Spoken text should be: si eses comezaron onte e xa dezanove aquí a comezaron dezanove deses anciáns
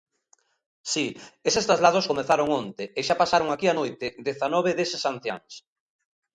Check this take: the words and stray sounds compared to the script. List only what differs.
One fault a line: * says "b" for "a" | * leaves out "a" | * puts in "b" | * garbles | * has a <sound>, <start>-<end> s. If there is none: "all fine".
* puts in "traslados"
* says "pasaron" for "dezanove"
* says "noite" for "comezaron"